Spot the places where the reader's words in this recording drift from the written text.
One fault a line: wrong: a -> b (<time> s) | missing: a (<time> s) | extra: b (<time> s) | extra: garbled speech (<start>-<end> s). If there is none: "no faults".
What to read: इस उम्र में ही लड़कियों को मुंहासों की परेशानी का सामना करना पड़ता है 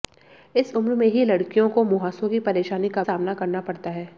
no faults